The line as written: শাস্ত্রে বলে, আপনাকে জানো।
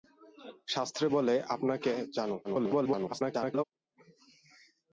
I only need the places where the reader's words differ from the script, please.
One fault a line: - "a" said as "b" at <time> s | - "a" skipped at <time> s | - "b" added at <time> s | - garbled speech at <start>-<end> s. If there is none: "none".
- garbled speech at 2.4-3.6 s